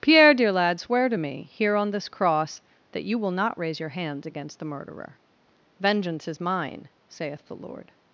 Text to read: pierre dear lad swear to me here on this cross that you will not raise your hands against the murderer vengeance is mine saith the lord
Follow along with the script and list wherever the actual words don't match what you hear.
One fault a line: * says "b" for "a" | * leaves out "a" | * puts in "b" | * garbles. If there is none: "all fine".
all fine